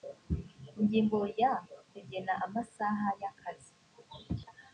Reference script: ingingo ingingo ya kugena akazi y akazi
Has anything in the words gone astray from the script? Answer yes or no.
yes